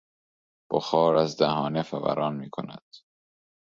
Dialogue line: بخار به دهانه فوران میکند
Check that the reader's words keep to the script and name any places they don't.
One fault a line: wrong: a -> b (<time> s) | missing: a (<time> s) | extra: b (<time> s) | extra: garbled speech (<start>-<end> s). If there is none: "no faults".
wrong: به -> از (1.1 s)